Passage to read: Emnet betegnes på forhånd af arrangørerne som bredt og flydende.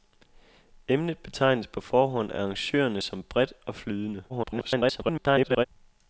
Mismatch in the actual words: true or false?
true